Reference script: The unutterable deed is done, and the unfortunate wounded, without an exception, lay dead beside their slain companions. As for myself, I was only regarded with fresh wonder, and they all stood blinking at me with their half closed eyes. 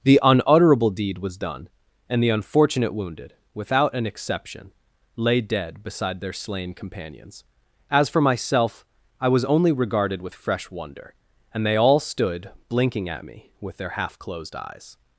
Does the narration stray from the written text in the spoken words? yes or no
yes